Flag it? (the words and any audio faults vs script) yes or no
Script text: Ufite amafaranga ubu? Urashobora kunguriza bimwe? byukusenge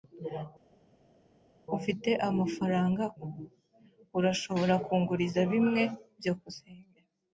no